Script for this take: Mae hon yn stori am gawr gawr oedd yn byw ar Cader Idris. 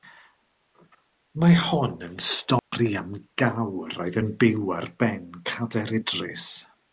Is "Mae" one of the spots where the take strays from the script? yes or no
no